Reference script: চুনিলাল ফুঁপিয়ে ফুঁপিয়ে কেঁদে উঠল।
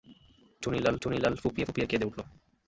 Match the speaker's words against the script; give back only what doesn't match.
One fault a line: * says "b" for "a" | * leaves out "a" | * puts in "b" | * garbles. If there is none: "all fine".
* puts in "চুনিলাল"